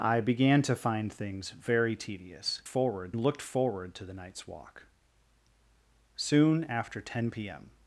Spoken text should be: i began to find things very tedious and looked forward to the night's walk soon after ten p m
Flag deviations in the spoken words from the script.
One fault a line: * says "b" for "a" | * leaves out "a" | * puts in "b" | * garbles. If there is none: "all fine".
* says "forward" for "and"